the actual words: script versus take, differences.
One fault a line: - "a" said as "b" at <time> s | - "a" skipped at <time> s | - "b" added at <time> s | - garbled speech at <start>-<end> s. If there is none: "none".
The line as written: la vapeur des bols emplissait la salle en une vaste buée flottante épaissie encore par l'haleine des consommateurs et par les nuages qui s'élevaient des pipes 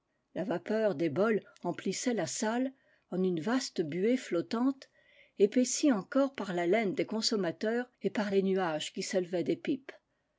none